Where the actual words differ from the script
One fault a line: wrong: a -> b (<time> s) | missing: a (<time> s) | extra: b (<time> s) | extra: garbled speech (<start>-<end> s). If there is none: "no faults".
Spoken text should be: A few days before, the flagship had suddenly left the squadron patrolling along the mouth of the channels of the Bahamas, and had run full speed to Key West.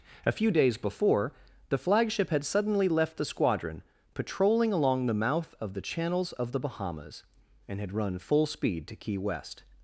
no faults